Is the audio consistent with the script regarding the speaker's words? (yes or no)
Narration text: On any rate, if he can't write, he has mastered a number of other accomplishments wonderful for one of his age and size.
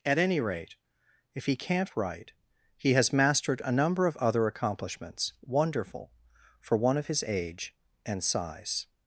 no